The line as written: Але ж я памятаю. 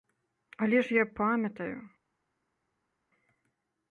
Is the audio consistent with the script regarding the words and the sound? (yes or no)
yes